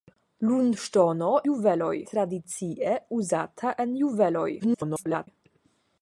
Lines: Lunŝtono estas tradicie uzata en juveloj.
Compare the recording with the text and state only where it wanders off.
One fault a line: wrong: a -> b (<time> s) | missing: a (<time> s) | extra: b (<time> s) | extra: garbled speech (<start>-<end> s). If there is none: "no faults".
wrong: estas -> juveloj (1.5 s)
extra: garbled speech (4.6-5.3 s)